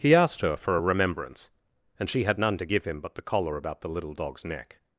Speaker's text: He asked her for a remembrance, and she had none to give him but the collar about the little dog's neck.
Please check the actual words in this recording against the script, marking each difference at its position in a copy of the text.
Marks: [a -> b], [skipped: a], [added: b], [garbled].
He asked her for a remembrance, and she had none to give him but the collar about the little dog's neck.